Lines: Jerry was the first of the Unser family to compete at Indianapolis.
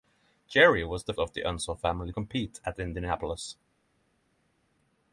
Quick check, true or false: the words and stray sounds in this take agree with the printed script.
false